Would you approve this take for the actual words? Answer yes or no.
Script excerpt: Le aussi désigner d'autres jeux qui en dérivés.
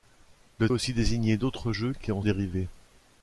yes